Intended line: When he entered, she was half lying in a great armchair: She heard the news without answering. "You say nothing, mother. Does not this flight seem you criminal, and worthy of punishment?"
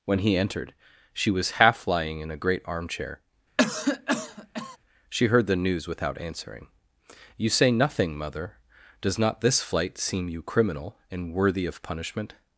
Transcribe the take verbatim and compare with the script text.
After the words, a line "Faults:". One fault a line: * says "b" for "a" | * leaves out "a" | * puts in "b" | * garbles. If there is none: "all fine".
When he entered, she was half lying in a great armchair: She heard the news without answering. "You say nothing, mother. Does not this flight seem you criminal, and worthy of punishment?"
Faults:
all fine